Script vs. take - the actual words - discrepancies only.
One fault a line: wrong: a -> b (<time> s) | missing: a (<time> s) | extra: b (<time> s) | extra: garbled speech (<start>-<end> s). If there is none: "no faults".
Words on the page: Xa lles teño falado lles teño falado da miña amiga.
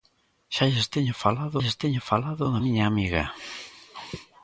no faults